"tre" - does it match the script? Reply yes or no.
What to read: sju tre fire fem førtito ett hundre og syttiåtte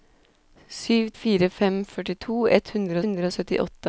no